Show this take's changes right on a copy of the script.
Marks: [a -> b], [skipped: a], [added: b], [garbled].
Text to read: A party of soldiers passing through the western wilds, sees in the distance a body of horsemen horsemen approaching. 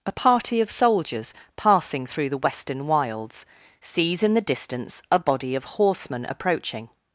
A party of soldiers passing through the western wilds, sees in the distance a body of horsemen [skipped: horsemen] approaching.